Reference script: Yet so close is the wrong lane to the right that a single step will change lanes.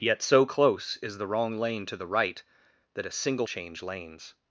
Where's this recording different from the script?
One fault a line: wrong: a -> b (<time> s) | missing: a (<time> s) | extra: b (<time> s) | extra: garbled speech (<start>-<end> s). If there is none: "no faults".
missing: step will (3.5 s)